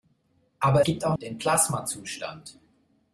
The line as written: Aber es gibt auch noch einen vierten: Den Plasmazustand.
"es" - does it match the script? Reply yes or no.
no